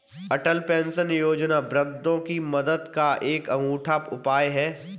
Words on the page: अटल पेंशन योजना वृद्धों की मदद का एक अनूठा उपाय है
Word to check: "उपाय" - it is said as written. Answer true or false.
true